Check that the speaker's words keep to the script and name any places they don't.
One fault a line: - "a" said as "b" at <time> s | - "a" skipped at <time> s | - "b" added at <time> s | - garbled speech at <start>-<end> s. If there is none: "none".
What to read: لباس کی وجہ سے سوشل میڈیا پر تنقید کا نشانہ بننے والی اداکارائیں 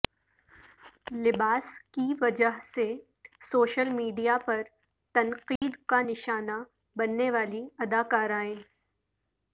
none